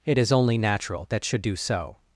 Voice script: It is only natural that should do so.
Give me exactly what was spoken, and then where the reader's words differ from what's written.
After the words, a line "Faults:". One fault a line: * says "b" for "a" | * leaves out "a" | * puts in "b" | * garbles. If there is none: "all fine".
It is only natural that should do so.
Faults:
all fine